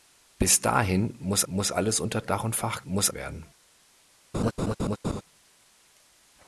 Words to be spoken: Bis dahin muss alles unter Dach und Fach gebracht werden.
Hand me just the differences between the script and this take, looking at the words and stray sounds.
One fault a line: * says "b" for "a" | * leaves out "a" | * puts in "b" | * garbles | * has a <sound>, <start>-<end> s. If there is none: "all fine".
* puts in "muss"
* says "muss" for "gebracht"
* has a laugh, 4.3-5.2 s